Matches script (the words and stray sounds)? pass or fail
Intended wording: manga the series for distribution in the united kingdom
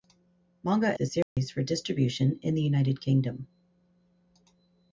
fail